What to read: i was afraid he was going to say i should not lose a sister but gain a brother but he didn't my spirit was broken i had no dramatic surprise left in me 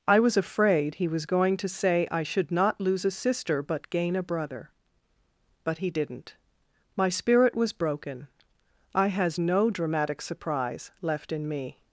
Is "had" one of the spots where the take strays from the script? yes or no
yes